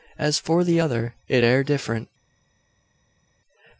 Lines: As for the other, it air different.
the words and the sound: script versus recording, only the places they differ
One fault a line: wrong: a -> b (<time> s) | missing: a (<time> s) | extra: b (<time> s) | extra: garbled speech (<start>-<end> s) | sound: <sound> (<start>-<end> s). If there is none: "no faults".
no faults